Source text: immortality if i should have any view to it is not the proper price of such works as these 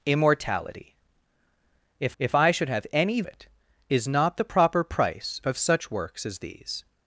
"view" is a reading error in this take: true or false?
true